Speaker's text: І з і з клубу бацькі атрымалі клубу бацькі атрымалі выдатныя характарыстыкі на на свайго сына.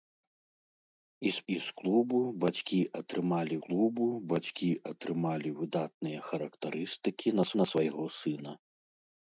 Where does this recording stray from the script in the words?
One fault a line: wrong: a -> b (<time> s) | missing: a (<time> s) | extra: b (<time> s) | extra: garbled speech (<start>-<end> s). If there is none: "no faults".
no faults